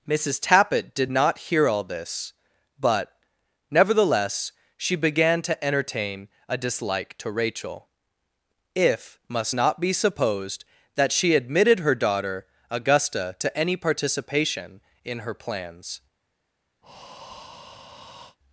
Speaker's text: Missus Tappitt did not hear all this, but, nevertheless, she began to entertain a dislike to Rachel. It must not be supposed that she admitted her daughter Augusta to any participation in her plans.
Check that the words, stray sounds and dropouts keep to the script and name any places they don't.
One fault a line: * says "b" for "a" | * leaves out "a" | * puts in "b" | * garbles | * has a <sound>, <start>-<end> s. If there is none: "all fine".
* says "If" for "It"
* has a breath, 16.8-18.4 s